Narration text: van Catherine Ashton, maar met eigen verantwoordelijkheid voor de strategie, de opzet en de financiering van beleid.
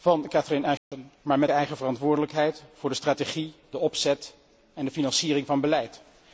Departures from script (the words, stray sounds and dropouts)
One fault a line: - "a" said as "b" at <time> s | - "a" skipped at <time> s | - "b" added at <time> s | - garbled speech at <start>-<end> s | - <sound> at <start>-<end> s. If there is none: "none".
- dropout at 0.8-0.9 s